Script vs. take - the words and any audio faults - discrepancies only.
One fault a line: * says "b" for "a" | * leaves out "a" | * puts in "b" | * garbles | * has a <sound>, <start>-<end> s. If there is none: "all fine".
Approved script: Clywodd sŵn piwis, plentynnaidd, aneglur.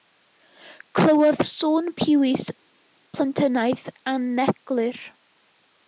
all fine